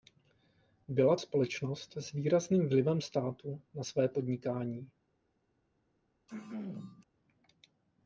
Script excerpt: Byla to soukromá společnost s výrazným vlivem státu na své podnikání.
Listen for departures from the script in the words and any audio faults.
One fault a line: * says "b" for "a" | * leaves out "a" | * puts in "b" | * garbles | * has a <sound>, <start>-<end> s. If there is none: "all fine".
* leaves out "to soukromá"
* has a throat clearing, 6.3-7.0 s